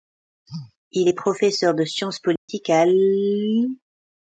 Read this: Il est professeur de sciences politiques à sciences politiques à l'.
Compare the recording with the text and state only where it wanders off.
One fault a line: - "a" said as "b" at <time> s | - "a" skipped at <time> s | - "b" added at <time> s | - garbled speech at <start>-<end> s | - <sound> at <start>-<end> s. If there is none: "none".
- dropout at 2.4-2.5 s
- "sciences politiques à" skipped at 2.8 s